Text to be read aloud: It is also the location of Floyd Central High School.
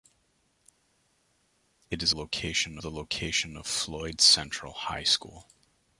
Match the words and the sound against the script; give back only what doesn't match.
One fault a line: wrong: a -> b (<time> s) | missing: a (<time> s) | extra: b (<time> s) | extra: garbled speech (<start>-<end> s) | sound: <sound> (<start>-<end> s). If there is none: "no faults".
wrong: also -> location (2.1 s)